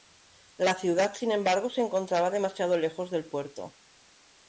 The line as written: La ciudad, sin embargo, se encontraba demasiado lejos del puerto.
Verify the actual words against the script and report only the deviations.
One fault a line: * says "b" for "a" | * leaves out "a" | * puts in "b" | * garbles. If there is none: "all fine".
all fine